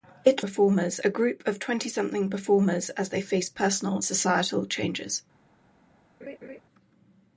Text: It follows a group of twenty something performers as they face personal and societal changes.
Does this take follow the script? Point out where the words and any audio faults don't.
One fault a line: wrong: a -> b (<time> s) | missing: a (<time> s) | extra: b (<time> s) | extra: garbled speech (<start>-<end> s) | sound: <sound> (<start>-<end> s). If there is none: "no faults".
wrong: follows -> performers (0.4 s)
missing: and (4.0 s)
sound: laugh (6.2-6.6 s)